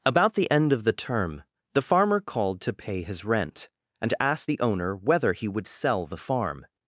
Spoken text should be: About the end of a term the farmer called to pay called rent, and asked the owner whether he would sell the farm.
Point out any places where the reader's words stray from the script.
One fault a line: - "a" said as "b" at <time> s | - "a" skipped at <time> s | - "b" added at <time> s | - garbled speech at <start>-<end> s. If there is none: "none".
- "a" said as "the" at 0.8 s
- "called" said as "his" at 3.0 s